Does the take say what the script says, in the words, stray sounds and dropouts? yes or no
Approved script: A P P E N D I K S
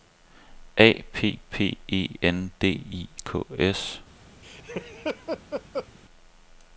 no